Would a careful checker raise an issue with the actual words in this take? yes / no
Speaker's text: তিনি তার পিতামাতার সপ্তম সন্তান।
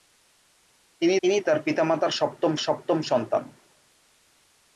yes